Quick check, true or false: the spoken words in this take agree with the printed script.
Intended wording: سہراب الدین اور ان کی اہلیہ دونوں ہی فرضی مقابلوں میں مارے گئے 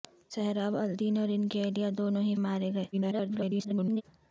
false